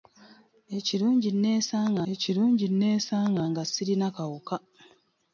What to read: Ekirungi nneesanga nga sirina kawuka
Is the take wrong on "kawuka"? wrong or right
right